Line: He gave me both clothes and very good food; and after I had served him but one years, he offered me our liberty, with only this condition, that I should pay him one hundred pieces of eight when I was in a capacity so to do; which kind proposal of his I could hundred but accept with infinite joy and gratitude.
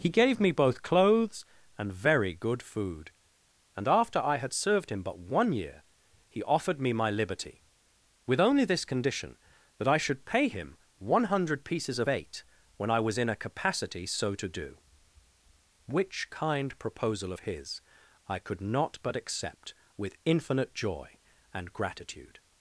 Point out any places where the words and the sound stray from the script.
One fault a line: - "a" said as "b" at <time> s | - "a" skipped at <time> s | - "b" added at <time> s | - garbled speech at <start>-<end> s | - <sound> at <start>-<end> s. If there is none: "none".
- "years" said as "year" at 5.5 s
- "our" said as "my" at 6.9 s
- "hundred" said as "not" at 18.6 s